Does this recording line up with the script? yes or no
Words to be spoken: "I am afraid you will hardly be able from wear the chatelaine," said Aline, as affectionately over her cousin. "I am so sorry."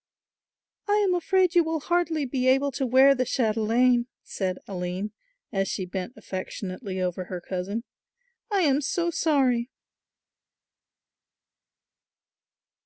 no